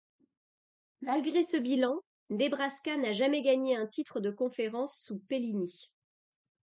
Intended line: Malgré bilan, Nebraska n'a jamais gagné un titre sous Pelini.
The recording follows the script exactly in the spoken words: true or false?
false